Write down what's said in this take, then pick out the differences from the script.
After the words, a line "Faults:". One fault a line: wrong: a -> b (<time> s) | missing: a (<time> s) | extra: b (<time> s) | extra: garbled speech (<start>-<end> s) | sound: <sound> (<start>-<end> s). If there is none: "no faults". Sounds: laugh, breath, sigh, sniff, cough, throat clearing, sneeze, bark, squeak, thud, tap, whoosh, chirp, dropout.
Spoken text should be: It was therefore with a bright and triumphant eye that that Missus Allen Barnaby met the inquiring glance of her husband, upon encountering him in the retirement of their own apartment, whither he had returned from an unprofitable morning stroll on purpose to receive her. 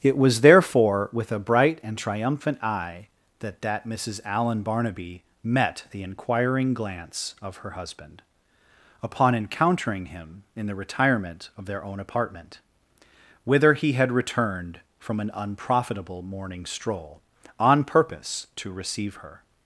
It was therefore with a bright and triumphant eye that that Missus Allen Barnaby met the inquiring glance of her husband, upon encountering him in the retirement of their own apartment, whither he had returned from an unprofitable morning stroll on purpose to receive her.
Faults:
no faults